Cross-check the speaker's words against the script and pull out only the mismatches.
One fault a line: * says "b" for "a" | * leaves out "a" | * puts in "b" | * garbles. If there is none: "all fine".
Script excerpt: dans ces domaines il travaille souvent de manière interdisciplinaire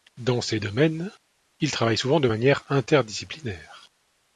all fine